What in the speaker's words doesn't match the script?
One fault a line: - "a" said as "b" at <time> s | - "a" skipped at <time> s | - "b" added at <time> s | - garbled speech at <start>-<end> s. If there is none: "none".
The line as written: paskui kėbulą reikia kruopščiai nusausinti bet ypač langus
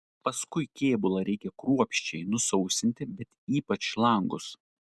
none